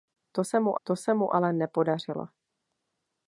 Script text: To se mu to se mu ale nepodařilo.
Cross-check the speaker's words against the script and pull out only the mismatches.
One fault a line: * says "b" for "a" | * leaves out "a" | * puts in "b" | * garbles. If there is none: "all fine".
all fine